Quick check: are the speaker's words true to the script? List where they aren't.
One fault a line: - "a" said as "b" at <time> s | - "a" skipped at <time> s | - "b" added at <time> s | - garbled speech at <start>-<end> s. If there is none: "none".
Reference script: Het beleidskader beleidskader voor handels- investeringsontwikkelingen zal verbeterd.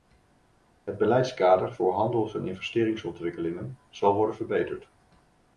- "beleidskader" skipped at 1.7 s
- "en" added at 2.3 s
- "worden" added at 4.1 s